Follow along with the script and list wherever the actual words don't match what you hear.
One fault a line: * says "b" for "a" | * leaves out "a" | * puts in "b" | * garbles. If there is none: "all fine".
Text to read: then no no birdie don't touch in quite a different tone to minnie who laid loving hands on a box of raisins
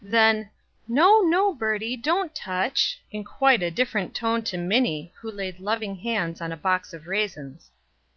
all fine